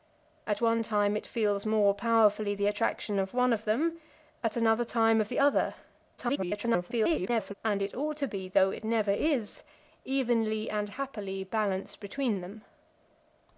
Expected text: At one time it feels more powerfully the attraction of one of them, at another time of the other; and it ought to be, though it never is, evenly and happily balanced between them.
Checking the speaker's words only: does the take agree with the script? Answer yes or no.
no